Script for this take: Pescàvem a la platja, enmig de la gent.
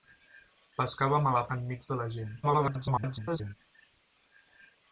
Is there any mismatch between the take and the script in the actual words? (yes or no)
yes